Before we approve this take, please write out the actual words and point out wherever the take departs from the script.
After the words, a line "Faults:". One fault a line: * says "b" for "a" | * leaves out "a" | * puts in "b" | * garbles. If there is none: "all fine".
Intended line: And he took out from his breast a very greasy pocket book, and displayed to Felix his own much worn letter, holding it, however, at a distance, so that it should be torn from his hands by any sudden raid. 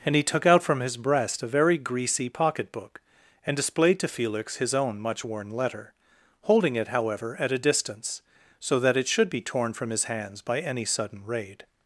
And he took out from his breast a very greasy pocket book, and displayed to Felix his own much worn letter, holding it, however, at a distance, so that it should be torn from his hands by any sudden raid.
Faults:
all fine